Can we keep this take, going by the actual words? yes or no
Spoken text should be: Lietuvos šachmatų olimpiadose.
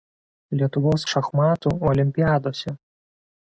yes